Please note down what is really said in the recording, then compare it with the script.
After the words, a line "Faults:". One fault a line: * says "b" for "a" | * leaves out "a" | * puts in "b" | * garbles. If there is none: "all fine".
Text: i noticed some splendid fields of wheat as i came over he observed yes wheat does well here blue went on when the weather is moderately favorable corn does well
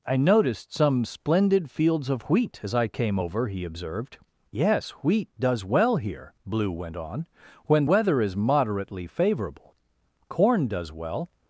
i noticed some splendid fields of wheat as i came over he observed yes wheat does well here blue went on when weather is moderately favorable corn does well
Faults:
* leaves out "the"